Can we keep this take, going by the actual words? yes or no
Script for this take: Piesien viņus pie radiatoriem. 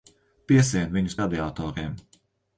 no